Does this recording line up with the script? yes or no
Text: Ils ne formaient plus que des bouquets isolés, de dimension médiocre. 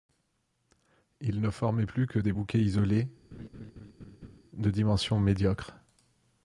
yes